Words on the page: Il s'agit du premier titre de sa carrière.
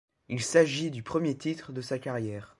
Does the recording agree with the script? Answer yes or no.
yes